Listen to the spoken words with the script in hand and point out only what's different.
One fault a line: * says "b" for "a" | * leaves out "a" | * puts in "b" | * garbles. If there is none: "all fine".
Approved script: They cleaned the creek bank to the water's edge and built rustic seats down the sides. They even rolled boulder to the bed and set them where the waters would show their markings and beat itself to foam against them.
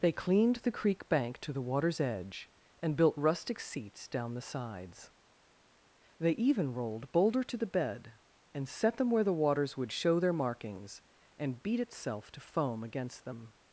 all fine